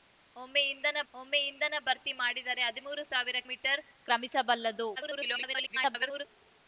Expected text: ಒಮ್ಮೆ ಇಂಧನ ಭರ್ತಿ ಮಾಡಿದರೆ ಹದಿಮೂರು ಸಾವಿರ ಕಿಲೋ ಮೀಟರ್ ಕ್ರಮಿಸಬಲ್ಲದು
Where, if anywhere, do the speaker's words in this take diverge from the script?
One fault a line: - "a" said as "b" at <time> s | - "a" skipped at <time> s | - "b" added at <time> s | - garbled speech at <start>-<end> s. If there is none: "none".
- "ಒಮ್ಮೆ ಇಂಧನ" added at 1.1 s
- "ಕಿಲೋ" skipped at 3.4 s
- garbled speech at 5.0-6.2 s